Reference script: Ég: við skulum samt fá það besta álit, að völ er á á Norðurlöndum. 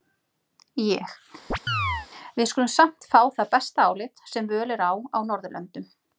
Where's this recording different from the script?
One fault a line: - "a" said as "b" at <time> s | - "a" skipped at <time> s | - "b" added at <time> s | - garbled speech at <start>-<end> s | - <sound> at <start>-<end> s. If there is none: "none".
- chirp at 1.5-2.1 s
- "að" said as "sem" at 4.3 s